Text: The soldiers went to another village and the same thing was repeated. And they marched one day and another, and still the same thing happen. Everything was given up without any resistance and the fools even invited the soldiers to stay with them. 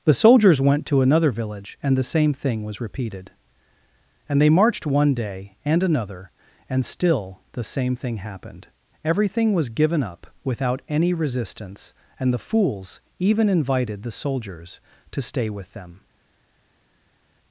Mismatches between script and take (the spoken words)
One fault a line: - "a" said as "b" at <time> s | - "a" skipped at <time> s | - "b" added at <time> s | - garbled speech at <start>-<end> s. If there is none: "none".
- "happen" said as "happened" at 8.2 s